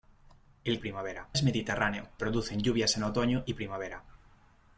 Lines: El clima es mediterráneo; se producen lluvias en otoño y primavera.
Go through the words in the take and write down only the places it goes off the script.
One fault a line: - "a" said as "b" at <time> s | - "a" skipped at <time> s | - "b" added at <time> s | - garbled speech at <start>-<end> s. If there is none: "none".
- "clima" said as "primavera" at 0.8 s
- "se" skipped at 2.1 s